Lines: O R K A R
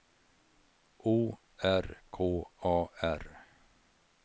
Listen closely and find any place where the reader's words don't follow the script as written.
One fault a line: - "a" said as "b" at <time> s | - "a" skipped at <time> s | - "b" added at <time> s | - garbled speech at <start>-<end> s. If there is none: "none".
none